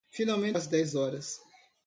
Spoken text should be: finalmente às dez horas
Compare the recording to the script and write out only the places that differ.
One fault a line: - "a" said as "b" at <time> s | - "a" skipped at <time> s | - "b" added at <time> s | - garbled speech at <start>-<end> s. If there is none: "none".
none